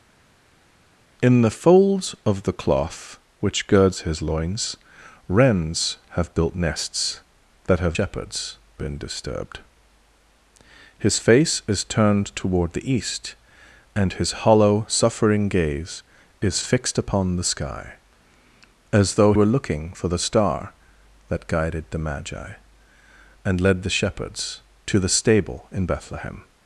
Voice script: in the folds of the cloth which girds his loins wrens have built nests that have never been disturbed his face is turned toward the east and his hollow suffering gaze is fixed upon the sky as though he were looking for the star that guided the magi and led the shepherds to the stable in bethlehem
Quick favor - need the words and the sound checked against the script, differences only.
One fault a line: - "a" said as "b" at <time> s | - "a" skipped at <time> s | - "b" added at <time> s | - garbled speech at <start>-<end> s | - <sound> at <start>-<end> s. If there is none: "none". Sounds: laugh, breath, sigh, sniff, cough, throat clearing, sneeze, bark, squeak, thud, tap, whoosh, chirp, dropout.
- "never" said as "shepherds" at 7.9 s
- "he" skipped at 19.3 s